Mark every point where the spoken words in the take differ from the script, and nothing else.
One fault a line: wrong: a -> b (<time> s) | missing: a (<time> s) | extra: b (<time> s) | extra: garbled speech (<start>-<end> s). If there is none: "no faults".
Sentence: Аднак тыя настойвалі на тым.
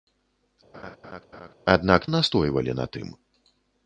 missing: тыя (2.1 s)